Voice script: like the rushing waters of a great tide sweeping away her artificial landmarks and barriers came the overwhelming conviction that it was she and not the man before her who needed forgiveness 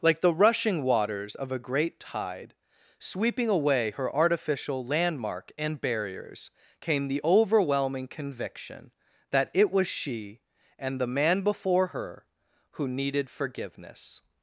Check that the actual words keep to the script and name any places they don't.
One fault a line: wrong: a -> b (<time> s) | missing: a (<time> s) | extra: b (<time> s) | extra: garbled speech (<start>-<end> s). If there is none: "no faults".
wrong: landmarks -> landmark (4.8 s)
missing: not (11.0 s)